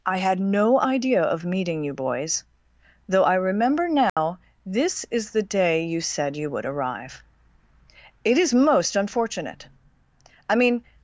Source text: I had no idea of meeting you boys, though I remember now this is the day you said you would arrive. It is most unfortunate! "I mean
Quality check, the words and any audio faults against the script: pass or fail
fail